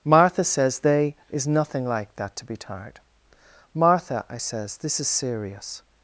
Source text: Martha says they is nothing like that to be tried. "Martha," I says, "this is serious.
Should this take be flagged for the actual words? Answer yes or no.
yes